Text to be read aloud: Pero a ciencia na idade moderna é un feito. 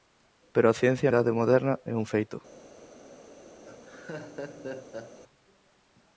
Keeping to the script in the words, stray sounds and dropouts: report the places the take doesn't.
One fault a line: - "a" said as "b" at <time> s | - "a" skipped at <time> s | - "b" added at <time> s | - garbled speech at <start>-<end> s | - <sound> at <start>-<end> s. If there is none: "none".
- "na" skipped at 1.1 s
- laugh at 3.6-5.2 s